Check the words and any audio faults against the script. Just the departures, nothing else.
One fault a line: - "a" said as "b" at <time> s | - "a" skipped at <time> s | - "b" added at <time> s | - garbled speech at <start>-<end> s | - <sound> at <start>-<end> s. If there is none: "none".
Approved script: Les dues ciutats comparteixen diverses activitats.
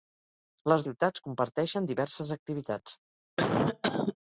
- "dues" skipped at 0.8 s
- cough at 3.4-4.2 s